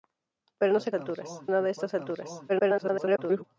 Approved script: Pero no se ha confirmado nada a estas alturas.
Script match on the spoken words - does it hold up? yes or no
no